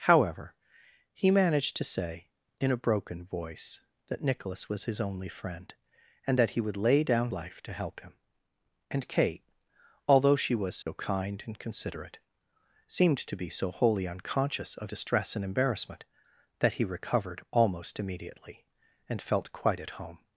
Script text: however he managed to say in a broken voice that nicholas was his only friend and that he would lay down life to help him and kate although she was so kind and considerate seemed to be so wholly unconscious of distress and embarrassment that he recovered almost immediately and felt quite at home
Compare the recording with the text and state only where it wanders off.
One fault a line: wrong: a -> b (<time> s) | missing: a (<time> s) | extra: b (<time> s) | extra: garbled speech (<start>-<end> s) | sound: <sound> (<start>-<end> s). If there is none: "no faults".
sound: dropout (10.8-10.9 s)